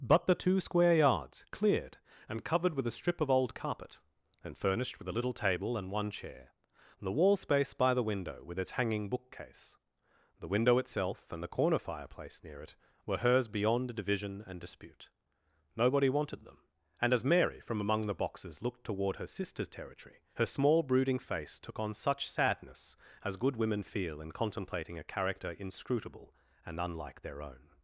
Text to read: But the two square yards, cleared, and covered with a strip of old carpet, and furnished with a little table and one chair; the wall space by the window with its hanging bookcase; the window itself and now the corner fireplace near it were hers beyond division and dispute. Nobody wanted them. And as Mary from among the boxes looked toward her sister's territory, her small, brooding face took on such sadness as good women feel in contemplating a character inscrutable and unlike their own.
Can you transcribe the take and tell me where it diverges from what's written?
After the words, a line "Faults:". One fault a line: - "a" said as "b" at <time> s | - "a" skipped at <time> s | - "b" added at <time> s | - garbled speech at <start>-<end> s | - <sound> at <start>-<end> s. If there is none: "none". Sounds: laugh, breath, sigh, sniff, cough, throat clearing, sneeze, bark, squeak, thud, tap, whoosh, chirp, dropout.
But the two square yards, cleared, and covered with a strip of old carpet, and furnished with a little table and one chair; the wall space by the window with its hanging bookcase; the window itself and the corner fireplace near it were hers beyond division and dispute. Nobody wanted them. And as Mary from among the boxes looked toward her sister's territory, her small, brooding face took on such sadness as good women feel in contemplating a character inscrutable and unlike their own.
Faults:
- "now" skipped at 11.4 s